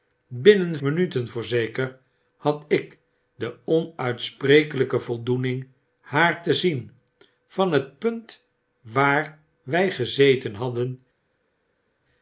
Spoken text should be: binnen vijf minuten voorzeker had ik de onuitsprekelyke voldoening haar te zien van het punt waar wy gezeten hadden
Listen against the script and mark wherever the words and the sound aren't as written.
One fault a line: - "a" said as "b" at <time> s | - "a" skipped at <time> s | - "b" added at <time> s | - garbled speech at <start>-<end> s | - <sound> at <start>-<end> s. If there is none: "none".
- "vijf" skipped at 0.8 s